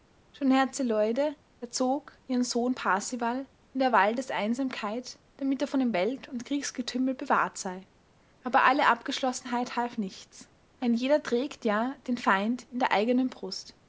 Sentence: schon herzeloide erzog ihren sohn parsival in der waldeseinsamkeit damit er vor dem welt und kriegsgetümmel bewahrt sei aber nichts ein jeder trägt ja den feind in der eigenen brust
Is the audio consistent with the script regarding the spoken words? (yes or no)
no